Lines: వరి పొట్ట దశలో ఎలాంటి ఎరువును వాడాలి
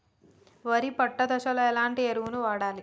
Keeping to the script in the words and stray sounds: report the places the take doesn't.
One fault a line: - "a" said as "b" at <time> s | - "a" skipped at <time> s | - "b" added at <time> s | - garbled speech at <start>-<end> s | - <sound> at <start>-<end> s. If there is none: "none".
none